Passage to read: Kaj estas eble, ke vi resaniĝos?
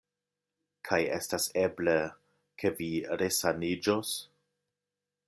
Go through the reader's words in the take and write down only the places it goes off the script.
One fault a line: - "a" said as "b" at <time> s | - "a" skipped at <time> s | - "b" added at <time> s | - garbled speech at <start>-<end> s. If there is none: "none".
none